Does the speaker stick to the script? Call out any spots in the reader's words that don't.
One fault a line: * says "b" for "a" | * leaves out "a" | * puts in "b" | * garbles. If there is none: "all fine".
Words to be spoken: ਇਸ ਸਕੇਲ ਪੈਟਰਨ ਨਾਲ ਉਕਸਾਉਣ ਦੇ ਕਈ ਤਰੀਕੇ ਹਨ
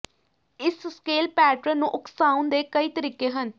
* says "ਨੂੰ" for "ਨਾਲ"